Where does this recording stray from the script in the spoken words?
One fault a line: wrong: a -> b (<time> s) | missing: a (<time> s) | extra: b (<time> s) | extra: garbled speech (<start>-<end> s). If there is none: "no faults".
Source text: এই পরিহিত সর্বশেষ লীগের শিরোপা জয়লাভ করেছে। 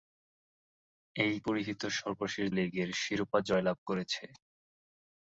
no faults